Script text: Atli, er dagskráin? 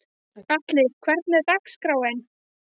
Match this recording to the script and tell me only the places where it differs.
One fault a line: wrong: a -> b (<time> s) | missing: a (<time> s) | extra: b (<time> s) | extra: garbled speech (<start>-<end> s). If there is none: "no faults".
extra: hvernig (1.1 s)